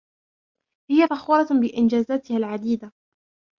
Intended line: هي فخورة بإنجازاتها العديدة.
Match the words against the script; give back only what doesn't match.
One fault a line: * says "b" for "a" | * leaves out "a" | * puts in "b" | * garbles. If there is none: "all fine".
all fine